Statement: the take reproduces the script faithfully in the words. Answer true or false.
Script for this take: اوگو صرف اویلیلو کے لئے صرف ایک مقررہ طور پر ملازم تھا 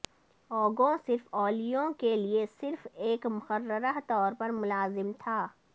true